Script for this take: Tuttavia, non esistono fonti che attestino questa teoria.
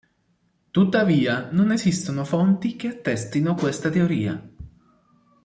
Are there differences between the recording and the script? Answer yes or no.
no